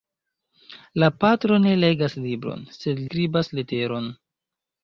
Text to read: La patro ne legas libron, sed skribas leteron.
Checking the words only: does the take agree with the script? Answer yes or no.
yes